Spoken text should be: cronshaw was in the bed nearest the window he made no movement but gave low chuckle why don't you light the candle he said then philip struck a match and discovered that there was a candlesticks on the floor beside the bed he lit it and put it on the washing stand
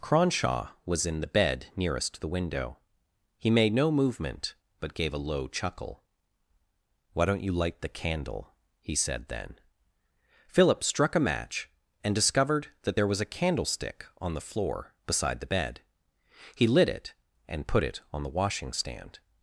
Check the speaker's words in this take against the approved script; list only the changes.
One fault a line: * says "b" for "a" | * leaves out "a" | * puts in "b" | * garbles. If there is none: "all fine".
* puts in "a"
* says "candlestick" for "candlesticks"